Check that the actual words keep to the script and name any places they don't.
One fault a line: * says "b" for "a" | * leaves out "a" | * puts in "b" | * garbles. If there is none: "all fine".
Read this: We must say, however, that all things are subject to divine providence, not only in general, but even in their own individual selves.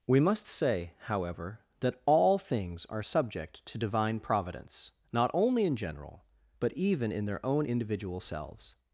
all fine